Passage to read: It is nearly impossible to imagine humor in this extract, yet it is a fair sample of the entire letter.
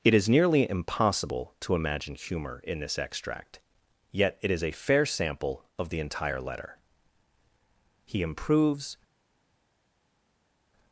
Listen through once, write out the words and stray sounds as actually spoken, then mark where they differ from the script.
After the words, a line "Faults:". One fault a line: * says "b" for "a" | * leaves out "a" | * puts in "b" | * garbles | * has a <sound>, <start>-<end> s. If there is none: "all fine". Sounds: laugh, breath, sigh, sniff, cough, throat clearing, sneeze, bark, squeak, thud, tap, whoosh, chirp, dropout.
It is nearly impossible to imagine humor in this extract, yet it is a fair sample of the entire letter. He improves
Faults:
* puts in "He improves"